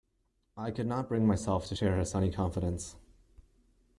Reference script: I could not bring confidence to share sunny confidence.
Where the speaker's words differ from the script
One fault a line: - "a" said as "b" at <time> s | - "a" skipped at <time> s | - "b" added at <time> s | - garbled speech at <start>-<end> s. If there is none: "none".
- "confidence" said as "myself" at 1.3 s
- "his" added at 2.0 s